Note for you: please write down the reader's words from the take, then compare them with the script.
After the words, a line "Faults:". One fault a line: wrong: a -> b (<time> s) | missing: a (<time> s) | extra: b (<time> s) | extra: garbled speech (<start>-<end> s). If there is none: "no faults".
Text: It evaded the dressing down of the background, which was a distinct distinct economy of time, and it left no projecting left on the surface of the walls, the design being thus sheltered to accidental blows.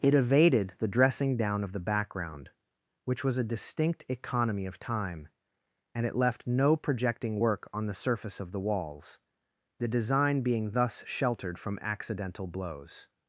It evaded the dressing down of the background, which was a distinct economy of time, and it left no projecting work on the surface of the walls, the design being thus sheltered from accidental blows.
Faults:
missing: distinct (4.0 s)
wrong: left -> work (7.4 s)
wrong: to -> from (11.6 s)